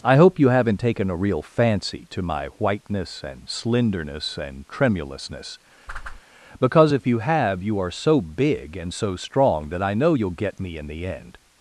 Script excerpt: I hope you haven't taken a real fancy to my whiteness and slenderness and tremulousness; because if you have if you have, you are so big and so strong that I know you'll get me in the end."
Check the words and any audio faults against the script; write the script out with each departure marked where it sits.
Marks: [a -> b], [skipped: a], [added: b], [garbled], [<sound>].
I hope you haven't taken a real fancy to my whiteness and slenderness and tremulousness; [whoosh] because if you have [skipped: if you have,] you are so big and so strong that I know you'll get me in the end."